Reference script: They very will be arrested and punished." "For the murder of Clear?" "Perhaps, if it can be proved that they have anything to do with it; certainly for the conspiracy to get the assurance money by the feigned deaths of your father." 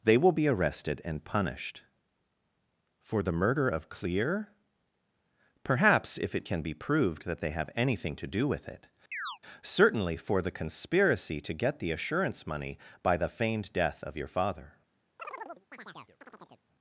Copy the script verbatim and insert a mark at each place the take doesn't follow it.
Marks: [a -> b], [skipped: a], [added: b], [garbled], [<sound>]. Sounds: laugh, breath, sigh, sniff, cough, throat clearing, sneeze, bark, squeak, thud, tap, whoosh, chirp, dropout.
They [skipped: very] will be arrested and punished." "For the murder of Clear?" "Perhaps, if it can be proved that they have anything to do with it; [chirp] certainly for the conspiracy to get the assurance money by the feigned [deaths -> death] of your father." [chirp]